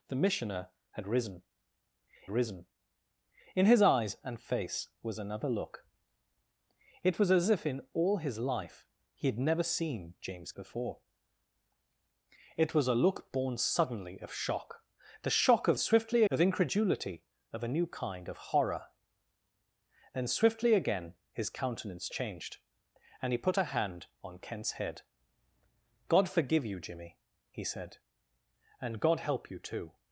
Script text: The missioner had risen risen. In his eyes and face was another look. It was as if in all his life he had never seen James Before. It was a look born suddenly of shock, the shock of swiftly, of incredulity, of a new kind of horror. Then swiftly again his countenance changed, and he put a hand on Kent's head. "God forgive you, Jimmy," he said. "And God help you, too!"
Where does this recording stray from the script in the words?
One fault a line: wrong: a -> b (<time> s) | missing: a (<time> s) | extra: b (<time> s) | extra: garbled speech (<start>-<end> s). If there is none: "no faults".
no faults